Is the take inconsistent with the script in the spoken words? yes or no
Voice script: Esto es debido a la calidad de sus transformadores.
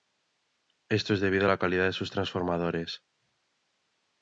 no